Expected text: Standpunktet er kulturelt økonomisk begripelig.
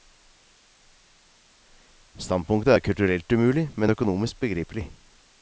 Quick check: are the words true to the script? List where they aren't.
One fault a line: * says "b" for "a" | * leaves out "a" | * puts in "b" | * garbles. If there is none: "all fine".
* puts in "umulig men"